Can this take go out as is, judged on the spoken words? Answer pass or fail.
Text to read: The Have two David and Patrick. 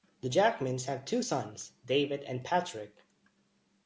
fail